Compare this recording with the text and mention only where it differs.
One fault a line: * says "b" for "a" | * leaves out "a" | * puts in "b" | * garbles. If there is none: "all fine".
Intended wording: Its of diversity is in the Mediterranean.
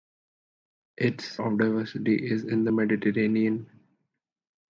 all fine